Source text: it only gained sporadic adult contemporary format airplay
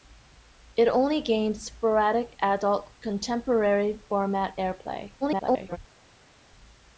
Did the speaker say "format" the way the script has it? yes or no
yes